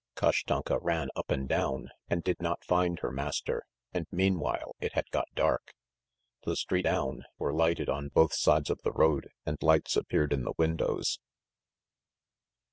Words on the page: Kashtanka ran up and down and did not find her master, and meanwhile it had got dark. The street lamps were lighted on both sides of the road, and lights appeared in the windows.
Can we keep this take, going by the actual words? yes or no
no